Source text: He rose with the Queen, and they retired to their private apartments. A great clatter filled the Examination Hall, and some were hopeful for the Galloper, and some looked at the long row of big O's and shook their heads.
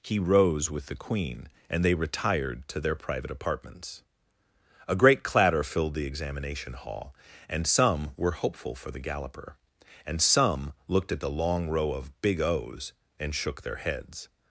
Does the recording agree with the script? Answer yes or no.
yes